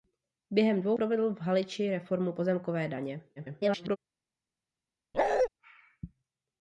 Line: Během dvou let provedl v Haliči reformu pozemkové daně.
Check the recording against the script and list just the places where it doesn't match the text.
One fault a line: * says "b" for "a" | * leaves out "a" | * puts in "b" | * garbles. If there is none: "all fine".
* leaves out "let"
* garbles